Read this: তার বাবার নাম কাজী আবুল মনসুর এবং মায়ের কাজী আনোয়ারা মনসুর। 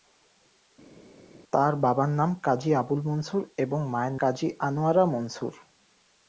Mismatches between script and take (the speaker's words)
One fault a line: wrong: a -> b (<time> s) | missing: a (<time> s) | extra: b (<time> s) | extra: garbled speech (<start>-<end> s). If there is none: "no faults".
no faults